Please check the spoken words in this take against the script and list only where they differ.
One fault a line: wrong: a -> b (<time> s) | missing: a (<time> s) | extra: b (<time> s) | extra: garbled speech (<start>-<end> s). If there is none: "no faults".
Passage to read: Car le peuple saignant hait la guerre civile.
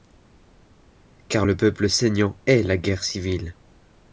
no faults